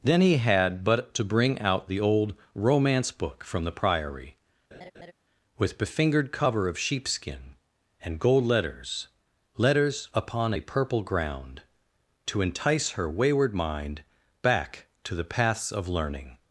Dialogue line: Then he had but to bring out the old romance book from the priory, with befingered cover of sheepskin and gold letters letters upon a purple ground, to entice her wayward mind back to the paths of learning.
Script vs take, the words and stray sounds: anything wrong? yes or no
yes